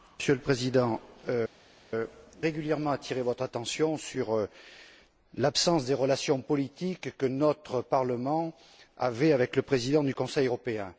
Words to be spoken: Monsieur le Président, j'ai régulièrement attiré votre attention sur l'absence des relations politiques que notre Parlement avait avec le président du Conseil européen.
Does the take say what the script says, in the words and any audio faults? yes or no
no